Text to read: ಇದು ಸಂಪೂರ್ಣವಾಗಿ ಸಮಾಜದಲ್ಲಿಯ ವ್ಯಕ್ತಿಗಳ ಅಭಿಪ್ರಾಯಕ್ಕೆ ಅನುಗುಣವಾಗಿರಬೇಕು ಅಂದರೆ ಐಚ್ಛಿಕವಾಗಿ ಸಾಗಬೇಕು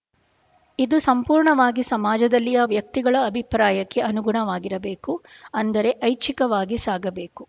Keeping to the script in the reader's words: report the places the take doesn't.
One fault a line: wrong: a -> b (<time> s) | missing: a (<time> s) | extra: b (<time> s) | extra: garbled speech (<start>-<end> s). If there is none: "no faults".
no faults